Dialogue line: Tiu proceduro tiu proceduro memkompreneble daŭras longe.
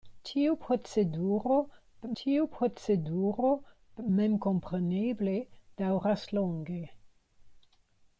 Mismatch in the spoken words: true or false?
false